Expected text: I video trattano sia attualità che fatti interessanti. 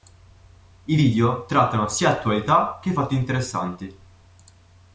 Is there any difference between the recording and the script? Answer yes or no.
no